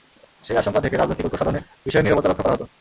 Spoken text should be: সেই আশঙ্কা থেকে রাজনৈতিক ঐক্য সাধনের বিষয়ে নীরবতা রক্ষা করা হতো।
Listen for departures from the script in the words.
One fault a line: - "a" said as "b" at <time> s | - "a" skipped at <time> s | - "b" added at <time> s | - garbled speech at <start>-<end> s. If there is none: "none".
none